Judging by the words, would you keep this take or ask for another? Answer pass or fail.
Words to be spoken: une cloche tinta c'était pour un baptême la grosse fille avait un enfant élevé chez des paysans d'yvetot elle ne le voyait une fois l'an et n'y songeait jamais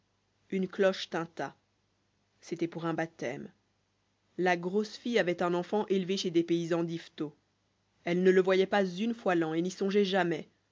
fail